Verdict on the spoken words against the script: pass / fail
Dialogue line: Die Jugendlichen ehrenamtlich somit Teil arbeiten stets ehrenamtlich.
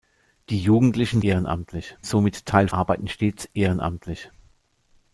pass